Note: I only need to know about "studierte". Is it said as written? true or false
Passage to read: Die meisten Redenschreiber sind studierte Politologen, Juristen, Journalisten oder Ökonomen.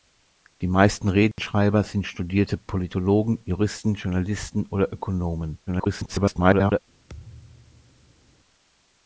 true